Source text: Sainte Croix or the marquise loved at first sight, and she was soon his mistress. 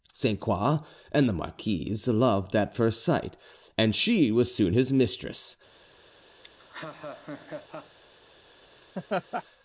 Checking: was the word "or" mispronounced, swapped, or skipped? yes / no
yes